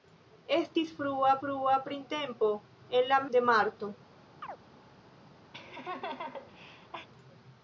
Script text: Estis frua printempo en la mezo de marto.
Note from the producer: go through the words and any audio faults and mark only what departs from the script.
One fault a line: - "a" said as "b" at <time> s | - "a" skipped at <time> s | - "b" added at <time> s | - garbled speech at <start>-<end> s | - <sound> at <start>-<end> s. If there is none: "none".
- "frua" added at 1.4 s
- "mezo" skipped at 3.2 s
- chirp at 4.4-4.6 s
- laugh at 5.5-7.1 s